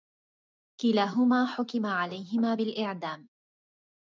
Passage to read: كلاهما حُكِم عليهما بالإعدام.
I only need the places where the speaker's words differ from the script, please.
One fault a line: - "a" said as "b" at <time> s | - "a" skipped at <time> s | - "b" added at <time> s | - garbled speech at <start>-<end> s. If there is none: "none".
none